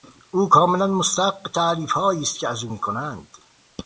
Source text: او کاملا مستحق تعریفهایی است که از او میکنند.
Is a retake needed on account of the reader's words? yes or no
no